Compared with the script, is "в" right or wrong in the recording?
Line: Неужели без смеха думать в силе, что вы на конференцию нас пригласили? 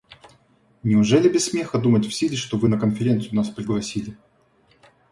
right